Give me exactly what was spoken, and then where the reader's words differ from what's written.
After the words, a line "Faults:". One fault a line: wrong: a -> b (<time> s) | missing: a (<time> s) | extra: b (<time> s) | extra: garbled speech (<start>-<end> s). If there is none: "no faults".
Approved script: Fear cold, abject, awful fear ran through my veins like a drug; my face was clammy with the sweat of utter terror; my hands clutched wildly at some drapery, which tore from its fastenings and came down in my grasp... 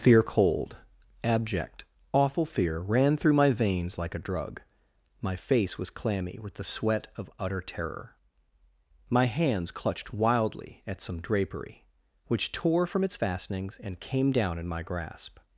Fear cold, abject, awful fear ran through my veins like a drug; my face was clammy with the sweat of utter terror; my hands clutched wildly at some drapery, which tore from its fastenings and came down in my grasp...
Faults:
no faults